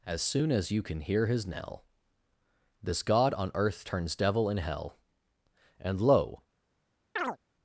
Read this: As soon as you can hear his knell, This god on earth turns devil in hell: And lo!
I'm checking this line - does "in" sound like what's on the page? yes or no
yes